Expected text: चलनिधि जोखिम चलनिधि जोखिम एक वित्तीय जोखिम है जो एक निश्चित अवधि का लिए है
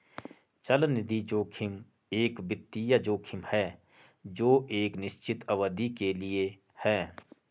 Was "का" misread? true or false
true